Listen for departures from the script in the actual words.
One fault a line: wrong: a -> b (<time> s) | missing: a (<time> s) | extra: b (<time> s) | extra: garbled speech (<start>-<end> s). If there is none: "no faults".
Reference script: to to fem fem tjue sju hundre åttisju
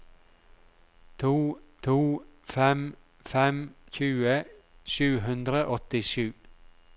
no faults